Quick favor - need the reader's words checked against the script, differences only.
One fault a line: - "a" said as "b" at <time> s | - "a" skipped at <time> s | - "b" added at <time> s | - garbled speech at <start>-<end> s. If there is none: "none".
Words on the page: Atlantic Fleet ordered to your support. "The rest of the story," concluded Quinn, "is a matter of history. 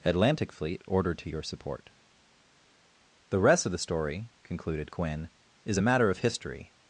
none